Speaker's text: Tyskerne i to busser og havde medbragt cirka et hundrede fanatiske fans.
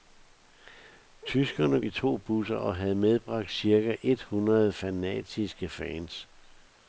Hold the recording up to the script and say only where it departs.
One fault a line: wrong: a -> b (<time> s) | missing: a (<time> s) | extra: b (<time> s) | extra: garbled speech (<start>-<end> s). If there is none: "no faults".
no faults